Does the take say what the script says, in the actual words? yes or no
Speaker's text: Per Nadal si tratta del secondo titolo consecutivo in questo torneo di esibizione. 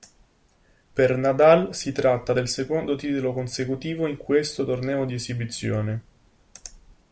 yes